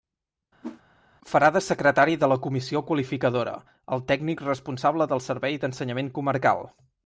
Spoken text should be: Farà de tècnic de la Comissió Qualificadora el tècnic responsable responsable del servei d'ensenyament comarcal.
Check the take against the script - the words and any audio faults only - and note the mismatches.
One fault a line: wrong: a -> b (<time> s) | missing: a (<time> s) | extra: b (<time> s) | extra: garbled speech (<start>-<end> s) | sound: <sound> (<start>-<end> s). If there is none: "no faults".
sound: whoosh (0.6-0.8 s)
wrong: tècnic -> secretari (1.7 s)
missing: responsable (5.1 s)